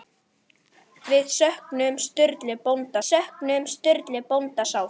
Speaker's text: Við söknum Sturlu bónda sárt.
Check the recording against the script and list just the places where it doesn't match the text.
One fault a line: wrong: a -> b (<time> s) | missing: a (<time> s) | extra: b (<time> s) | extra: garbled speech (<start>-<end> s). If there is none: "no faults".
extra: söknum Sturlu bónda (3.1 s)